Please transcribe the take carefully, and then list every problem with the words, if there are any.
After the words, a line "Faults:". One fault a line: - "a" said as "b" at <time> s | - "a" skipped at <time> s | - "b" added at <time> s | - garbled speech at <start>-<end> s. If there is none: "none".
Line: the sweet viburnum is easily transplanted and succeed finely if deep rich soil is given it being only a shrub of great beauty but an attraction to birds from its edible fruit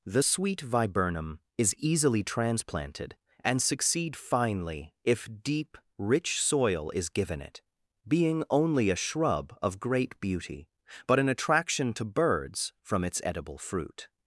the sweet viburnum is easily transplanted and succeed finely if deep rich soil is given it being only a shrub of great beauty but an attraction to birds from its edible fruit
Faults:
none